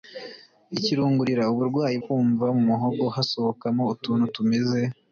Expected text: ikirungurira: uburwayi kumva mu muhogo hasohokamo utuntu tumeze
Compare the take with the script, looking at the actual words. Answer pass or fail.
pass